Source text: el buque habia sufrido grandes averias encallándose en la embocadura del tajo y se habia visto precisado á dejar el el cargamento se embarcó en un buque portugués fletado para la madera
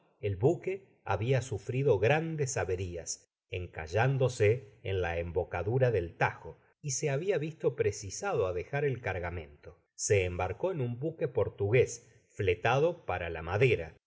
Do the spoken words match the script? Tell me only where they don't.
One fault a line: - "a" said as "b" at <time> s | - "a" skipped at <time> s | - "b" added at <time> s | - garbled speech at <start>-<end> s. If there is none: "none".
- "el" skipped at 9.0 s